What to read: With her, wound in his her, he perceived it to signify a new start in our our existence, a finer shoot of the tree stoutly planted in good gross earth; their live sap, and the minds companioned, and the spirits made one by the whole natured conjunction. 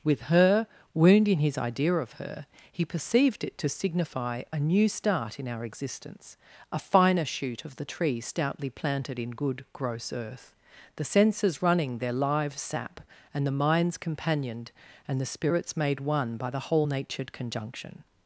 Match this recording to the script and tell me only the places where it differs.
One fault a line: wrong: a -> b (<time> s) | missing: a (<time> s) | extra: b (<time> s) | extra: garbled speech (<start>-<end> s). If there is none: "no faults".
extra: idea of (1.6 s)
missing: our (5.6 s)
extra: the senses running (10.9 s)